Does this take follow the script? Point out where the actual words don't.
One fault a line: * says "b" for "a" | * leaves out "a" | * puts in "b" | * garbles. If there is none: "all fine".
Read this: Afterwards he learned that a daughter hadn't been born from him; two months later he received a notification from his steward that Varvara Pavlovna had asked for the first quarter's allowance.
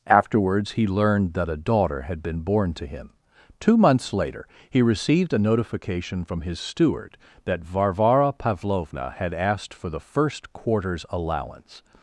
* says "had" for "hadn't"
* says "to" for "from"